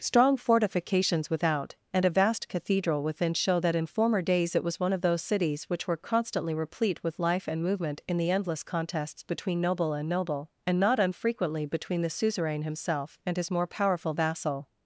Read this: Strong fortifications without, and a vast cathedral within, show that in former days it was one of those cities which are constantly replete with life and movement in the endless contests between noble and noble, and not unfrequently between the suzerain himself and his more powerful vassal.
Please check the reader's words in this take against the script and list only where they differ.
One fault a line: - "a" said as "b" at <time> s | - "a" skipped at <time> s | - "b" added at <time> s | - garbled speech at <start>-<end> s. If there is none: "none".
- "are" said as "were" at 5.9 s